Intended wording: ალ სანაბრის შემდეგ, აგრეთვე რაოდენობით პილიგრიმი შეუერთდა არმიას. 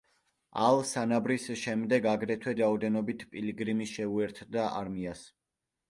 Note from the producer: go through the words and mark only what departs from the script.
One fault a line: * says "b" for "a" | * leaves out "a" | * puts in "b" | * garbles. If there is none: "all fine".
all fine